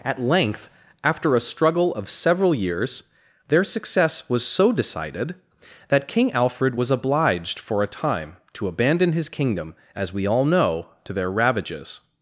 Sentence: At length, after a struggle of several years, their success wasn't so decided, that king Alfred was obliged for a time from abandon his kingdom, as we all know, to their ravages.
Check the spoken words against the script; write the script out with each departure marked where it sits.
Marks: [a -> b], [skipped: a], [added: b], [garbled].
At length, after a struggle of several years, their success [wasn't -> was] so decided, that king Alfred was obliged for a time [from -> to] abandon his kingdom, as we all know, to their ravages.